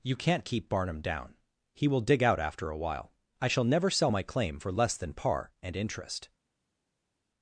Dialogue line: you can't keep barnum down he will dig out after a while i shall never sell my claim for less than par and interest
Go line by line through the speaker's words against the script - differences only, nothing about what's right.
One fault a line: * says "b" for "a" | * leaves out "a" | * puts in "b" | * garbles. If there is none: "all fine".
all fine